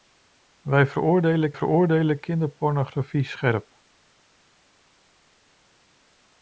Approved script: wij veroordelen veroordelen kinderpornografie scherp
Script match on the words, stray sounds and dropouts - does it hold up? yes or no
yes